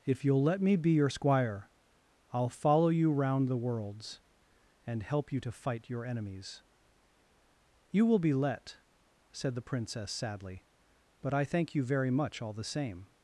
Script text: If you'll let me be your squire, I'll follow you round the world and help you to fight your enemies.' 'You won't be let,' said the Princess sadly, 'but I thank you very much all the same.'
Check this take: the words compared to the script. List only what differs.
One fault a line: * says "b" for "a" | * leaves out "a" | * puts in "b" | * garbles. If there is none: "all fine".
* says "worlds" for "world"
* says "will" for "won't"